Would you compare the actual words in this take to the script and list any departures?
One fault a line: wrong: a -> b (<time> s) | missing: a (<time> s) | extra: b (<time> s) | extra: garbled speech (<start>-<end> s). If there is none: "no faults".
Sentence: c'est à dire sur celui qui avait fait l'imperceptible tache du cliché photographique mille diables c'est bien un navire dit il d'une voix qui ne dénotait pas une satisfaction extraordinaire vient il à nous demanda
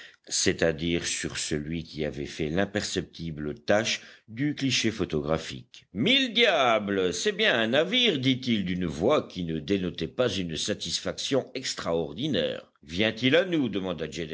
no faults